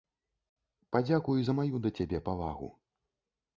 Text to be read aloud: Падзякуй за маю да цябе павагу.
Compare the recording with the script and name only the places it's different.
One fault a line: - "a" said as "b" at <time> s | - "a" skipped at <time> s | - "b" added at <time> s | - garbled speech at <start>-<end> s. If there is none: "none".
none